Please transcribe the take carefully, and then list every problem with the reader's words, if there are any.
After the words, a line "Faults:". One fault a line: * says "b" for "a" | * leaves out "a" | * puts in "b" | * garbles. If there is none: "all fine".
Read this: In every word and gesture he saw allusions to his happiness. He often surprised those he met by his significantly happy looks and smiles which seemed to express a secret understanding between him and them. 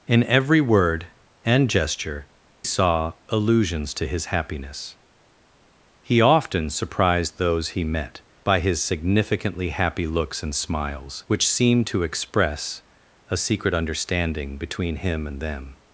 In every word and gesture saw allusions to his happiness. He often surprised those he met by his significantly happy looks and smiles which seemed to express a secret understanding between him and them.
Faults:
* leaves out "he"